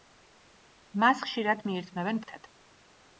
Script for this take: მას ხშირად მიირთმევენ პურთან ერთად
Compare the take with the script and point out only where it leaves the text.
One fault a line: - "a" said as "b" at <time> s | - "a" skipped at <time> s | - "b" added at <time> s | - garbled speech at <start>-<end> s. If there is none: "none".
- "პურთან" skipped at 2.2 s